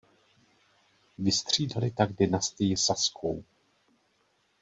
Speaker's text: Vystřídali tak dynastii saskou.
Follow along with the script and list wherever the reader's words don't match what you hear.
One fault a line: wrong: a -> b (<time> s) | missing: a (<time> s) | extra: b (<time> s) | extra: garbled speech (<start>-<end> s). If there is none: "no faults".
no faults